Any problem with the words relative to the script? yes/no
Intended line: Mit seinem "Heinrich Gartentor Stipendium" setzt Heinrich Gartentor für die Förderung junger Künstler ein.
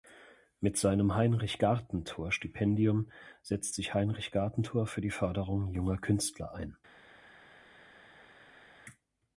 yes